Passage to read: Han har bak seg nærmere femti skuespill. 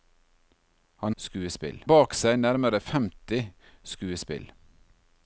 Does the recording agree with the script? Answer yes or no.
no